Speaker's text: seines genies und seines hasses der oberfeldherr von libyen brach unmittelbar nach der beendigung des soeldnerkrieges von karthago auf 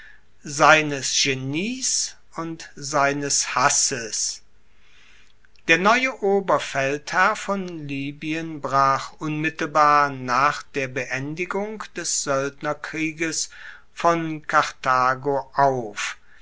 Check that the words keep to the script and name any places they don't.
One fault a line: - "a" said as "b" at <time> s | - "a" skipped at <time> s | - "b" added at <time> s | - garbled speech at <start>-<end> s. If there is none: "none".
- "neue" added at 5.8 s